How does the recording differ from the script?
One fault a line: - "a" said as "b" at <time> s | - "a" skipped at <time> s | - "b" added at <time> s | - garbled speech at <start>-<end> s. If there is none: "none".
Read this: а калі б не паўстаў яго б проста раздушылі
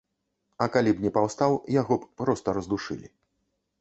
none